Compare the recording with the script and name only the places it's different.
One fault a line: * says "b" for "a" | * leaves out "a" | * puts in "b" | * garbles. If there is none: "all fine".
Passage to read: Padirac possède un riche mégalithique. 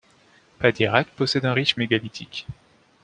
all fine